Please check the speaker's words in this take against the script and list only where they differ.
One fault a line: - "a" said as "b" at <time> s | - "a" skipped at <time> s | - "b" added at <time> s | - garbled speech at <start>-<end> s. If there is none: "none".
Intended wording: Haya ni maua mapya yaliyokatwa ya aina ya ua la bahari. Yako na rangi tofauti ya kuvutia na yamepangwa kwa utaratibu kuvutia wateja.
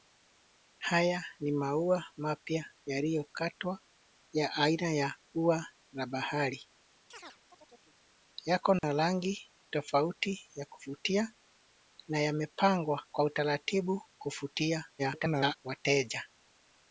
- garbled speech at 15.0-15.6 s